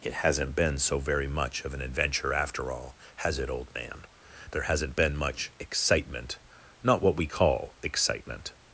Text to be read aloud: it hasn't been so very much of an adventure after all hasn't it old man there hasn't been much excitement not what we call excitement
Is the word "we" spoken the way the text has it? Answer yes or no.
yes